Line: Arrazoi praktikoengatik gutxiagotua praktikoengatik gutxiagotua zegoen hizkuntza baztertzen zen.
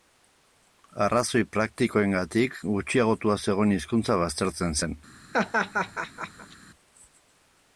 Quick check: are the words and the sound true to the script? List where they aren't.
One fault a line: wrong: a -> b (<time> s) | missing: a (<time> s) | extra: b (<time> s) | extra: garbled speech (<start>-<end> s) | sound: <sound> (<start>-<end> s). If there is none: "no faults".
missing: praktikoengatik gutxiagotua (3.4 s)
sound: laugh (5.3-6.6 s)